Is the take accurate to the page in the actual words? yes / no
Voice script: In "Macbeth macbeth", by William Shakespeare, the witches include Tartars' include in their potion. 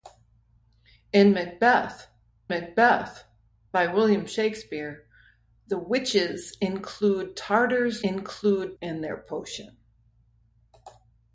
yes